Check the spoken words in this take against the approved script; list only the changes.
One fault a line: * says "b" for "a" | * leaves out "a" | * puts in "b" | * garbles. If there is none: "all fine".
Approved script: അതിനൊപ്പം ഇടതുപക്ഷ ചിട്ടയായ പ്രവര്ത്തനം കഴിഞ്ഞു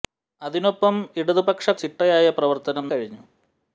all fine